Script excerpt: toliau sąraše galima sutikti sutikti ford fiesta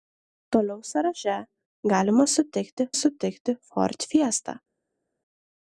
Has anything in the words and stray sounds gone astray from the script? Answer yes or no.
no